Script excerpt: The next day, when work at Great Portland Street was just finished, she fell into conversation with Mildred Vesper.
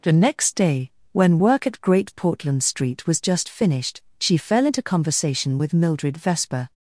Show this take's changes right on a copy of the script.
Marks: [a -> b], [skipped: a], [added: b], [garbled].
The next day, when work at Great Portland Street was just finished, she fell into conversation with Mildred Vesper.